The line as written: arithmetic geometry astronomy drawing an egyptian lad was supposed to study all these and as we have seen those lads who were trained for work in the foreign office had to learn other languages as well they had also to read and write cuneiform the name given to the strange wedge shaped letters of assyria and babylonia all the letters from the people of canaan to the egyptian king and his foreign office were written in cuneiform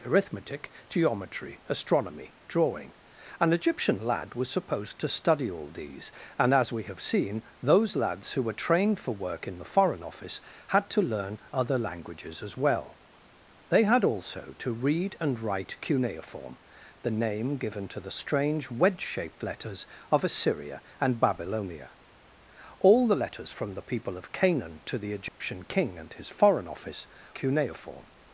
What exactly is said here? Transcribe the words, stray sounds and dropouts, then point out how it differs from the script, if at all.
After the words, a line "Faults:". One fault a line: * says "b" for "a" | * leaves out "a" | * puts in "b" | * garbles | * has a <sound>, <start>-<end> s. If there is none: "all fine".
arithmetic geometry astronomy drawing an egyptian lad was supposed to study all these and as we have seen those lads who were trained for work in the foreign office had to learn other languages as well they had also to read and write cuneiform the name given to the strange wedge shaped letters of assyria and babylonia all the letters from the people of canaan to the egyptian king and his foreign office cuneiform
Faults:
* has a dropout, 25.3-25.4 s
* leaves out "were written in"